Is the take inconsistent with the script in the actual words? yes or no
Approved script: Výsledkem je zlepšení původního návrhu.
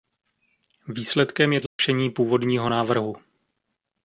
no